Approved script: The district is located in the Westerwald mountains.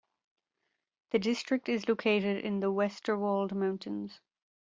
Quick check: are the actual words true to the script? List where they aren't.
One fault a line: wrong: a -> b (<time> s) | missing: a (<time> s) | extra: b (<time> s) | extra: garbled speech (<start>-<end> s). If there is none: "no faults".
no faults